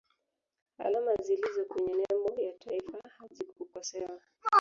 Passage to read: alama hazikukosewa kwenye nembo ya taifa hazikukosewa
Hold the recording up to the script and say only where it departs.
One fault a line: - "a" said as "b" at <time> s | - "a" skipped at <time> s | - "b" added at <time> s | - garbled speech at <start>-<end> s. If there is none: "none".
- "hazikukosewa" said as "zilizo" at 1.1 s